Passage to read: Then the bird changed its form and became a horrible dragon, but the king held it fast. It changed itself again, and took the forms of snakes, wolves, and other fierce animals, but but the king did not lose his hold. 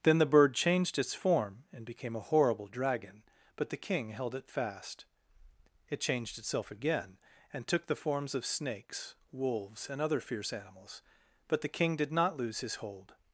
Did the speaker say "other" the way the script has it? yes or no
yes